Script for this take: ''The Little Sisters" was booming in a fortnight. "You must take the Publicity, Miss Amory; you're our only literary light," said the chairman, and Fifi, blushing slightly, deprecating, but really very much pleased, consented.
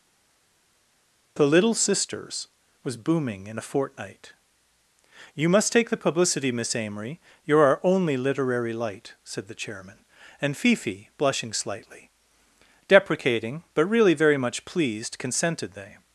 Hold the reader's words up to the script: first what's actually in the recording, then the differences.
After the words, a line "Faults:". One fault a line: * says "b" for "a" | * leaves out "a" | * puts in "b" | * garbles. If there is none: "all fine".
''The Little Sisters" was booming in a fortnight. "You must take the Publicity, Miss Amory; you're our only literary light," said the chairman, and Fifi, blushing slightly, deprecating, but really very much pleased, consented. They
Faults:
* puts in "They"